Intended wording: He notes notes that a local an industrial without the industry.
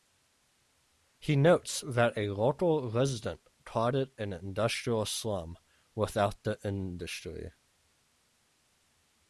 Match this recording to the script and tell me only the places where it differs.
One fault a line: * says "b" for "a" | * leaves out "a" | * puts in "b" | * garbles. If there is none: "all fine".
* leaves out "notes"
* puts in "resident called it"
* puts in "slum"